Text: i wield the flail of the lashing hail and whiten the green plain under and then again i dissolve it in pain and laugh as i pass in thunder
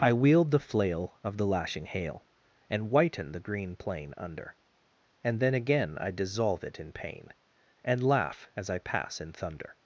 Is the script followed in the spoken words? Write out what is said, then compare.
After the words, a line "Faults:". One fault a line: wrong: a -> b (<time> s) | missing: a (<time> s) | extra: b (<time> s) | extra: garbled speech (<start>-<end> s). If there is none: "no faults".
i wield the flail of the lashing hail and whiten the green plain under and then again i dissolve it in pain and laugh as i pass in thunder
Faults:
no faults